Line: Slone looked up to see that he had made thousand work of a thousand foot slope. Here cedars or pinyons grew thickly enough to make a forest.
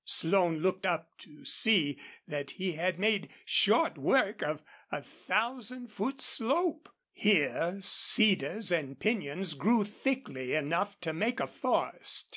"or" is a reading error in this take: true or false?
true